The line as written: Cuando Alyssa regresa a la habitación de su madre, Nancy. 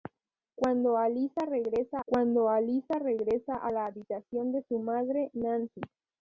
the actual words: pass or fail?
fail